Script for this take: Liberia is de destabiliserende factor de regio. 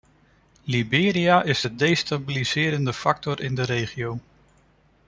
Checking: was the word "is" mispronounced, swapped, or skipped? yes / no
no